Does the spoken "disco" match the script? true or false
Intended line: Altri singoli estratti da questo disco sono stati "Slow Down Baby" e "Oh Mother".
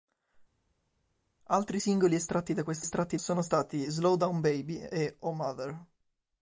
false